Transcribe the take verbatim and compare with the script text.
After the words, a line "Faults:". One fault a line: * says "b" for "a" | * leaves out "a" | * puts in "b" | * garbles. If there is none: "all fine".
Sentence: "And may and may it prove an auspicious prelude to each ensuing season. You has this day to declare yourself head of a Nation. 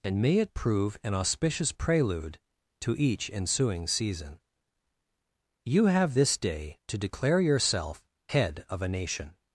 "And may it prove an auspicious prelude to each ensuing season. You have this day to declare yourself head of a Nation.
Faults:
* leaves out "and may"
* says "have" for "has"